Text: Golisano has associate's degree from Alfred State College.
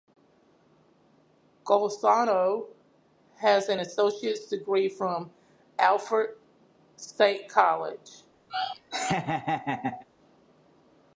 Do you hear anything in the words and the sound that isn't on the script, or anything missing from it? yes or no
yes